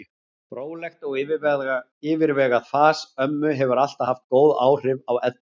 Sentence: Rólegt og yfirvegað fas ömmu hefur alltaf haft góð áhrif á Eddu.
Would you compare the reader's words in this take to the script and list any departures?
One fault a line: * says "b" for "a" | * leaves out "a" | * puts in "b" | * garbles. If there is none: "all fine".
all fine